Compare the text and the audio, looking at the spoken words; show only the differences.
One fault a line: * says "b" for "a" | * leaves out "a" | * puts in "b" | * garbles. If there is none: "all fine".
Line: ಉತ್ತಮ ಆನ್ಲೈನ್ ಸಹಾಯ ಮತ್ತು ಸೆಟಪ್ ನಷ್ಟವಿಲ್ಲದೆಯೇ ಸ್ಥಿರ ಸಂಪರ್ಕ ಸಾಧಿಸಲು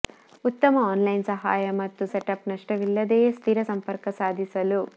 all fine